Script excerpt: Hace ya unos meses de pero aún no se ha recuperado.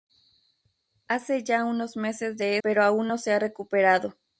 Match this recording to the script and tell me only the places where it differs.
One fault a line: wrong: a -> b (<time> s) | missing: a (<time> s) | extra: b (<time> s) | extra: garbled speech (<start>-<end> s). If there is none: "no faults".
no faults